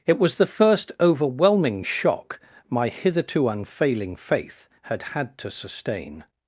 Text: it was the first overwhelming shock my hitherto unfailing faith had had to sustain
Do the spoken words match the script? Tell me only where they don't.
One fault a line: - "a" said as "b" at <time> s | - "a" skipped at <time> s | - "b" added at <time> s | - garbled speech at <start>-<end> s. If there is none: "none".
none